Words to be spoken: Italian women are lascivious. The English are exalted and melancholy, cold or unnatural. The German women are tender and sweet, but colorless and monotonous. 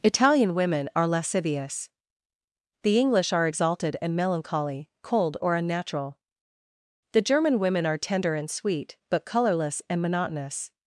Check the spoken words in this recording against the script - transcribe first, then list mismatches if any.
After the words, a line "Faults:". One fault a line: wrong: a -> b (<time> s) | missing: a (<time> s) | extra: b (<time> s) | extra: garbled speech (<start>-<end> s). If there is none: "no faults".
Italian women are lascivious. The English are exalted and melancholy, cold or unnatural. The German women are tender and sweet, but colorless and monotonous.
Faults:
no faults